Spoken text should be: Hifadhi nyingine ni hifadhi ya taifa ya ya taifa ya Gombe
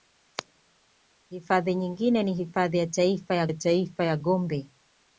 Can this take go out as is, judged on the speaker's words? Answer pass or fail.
pass